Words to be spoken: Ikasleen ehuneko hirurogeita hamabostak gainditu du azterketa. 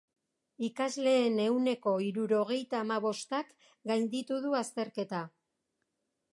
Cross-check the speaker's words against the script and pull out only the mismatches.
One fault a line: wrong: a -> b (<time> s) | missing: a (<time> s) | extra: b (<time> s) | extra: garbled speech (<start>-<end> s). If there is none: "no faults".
no faults